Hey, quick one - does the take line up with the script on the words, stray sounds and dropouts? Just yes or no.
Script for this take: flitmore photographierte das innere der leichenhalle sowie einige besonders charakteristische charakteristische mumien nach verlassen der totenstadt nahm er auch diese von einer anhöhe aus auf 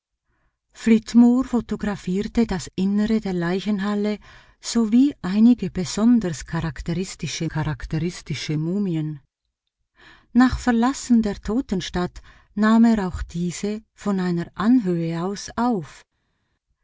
yes